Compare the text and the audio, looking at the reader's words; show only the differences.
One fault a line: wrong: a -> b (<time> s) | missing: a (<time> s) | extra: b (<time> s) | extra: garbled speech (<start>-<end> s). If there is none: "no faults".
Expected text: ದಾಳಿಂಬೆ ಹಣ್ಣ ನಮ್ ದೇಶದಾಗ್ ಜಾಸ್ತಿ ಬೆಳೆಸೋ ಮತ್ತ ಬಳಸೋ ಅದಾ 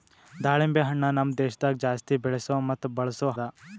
no faults